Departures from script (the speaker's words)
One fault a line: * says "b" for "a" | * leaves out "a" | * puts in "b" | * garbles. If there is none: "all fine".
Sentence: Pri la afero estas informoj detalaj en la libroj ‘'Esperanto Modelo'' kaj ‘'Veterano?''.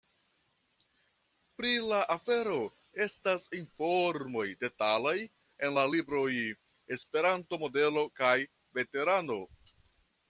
all fine